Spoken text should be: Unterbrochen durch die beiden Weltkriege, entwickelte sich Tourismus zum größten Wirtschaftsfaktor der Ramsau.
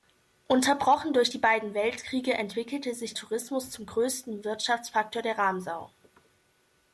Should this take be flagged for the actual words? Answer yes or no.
no